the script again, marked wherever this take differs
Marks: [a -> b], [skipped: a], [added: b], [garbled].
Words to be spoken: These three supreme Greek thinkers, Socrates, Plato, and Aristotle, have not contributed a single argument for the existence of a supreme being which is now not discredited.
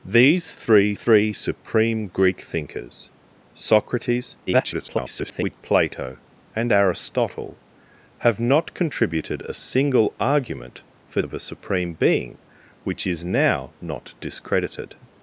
These three [added: three] supreme Greek thinkers, Socrates, [garbled] Plato, and Aristotle, have not contributed a single argument for [skipped: the existence] of a supreme being which is now not discredited.